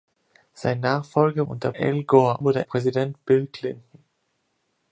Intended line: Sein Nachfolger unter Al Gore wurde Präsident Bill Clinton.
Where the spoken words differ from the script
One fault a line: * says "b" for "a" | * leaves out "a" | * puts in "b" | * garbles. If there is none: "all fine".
all fine